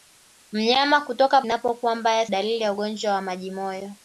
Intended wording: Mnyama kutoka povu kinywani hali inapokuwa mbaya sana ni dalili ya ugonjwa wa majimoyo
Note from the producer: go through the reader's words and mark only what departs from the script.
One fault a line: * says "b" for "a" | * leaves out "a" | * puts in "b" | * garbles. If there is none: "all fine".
* leaves out "povu kinywani hali"
* leaves out "sana ni"